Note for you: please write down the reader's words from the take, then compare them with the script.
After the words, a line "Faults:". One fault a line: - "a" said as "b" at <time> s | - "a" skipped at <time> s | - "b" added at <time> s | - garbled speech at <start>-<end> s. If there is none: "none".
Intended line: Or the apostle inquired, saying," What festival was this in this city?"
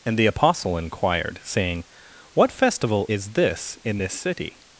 And the apostle inquired, saying," What festival is this in this city?"
Faults:
- "Or" said as "And" at 0.1 s
- "was" said as "is" at 3.1 s